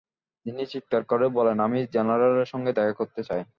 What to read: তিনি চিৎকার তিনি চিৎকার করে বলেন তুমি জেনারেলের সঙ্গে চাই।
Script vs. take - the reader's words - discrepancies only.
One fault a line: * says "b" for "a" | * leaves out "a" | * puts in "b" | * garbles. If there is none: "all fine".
* leaves out "তিনি চিৎকার"
* says "আমি" for "তুমি"
* puts in "দেখা করতে"